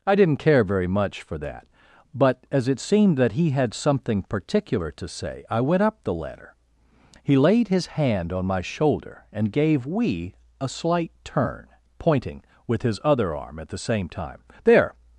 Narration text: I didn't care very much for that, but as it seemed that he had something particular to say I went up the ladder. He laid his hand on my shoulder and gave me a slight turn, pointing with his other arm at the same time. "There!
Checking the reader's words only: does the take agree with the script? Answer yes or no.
no